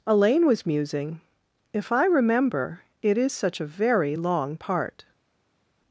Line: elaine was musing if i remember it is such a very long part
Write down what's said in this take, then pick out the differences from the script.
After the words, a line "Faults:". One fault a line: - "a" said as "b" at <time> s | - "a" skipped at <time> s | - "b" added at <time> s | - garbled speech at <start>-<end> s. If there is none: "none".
elaine was musing if i remember it is such a very long part
Faults:
none